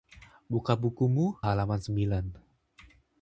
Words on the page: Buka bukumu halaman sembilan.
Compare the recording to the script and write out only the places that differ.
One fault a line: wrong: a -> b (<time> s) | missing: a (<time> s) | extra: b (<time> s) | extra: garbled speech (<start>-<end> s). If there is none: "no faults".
no faults